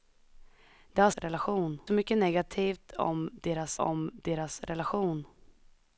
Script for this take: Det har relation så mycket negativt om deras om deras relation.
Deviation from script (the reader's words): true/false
false